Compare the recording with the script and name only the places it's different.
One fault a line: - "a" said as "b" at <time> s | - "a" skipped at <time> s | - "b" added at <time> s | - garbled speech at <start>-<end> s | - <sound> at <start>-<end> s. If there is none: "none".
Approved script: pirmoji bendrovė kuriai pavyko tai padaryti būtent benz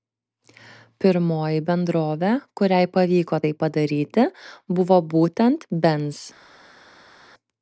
- "buvo" added at 4.8 s